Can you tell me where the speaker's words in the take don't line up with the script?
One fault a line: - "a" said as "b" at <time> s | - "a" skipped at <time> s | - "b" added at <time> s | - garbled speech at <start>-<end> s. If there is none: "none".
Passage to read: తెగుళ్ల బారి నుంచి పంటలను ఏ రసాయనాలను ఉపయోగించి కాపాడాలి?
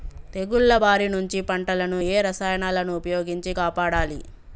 none